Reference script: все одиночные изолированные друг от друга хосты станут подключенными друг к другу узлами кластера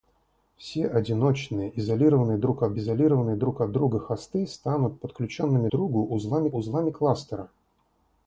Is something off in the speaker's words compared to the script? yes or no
yes